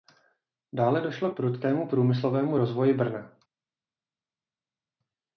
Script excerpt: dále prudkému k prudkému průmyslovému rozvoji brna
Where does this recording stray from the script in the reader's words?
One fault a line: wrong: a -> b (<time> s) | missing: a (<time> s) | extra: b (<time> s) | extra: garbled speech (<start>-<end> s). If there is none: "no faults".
wrong: prudkému -> došlo (1.0 s)